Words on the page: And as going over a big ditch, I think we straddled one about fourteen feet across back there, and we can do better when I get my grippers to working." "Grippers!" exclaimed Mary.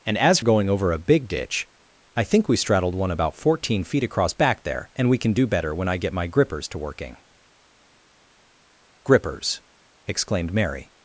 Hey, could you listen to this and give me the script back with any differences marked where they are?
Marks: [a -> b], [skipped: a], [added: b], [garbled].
And as going over a big ditch, I think we straddled one about fourteen feet across back there, and we can do better when I get my grippers to working." "Grippers!" exclaimed Mary.